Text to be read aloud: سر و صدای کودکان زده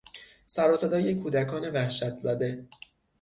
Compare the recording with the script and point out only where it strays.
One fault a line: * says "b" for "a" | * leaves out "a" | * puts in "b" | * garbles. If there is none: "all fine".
* puts in "وحشت"